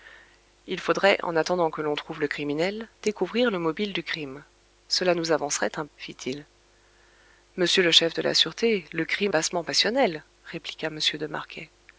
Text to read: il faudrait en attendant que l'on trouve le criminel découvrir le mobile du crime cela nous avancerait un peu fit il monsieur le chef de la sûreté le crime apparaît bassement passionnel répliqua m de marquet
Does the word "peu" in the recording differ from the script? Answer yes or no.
yes